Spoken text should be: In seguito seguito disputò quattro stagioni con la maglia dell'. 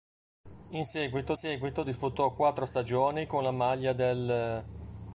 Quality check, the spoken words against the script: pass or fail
pass